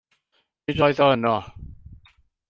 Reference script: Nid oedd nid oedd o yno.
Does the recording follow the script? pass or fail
fail